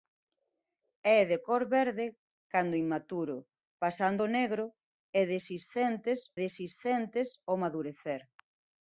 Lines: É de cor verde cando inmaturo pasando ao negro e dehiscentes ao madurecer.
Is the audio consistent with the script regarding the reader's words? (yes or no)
no